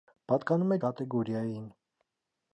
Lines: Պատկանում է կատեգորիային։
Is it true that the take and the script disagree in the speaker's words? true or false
false